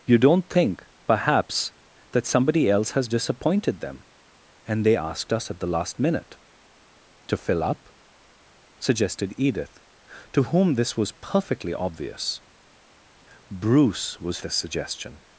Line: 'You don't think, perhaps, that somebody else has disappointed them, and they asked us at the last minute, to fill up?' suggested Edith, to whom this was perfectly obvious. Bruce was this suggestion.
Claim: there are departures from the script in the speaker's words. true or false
false